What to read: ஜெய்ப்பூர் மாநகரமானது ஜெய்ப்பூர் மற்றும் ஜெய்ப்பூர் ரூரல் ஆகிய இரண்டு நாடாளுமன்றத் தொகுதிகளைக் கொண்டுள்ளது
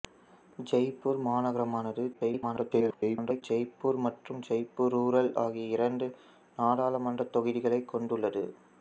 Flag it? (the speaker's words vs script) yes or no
yes